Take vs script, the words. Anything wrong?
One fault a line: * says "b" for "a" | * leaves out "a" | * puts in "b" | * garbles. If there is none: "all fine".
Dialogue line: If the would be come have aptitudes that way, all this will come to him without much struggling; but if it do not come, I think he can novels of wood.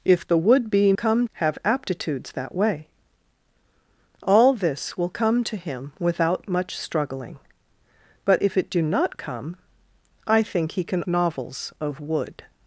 all fine